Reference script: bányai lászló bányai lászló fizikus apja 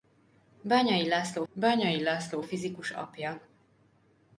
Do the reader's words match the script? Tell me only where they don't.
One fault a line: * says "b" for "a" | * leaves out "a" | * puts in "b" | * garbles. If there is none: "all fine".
all fine